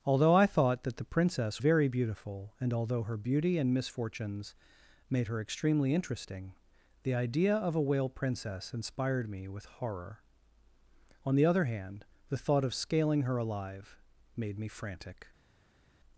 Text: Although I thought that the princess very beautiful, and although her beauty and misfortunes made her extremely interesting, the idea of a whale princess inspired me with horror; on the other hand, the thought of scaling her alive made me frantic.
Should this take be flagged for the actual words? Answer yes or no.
no